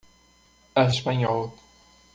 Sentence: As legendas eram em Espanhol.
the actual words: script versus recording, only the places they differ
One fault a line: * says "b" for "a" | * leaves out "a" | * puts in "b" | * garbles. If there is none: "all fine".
* leaves out "legendas eram em"